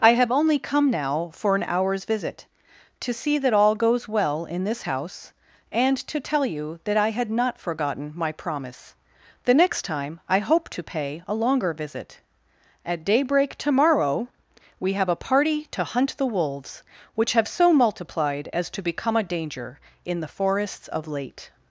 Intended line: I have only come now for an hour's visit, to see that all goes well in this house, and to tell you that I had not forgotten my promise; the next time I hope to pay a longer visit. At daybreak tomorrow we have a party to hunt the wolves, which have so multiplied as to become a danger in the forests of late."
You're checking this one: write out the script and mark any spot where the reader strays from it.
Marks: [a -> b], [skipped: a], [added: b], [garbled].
I have only come now for an hour's visit, to see that all goes well in this house, and to tell you that I had not forgotten my promise; the next time I hope to pay a longer visit. At daybreak tomorrow we have a party to hunt the wolves, which have so multiplied as to become a danger in the forests of late."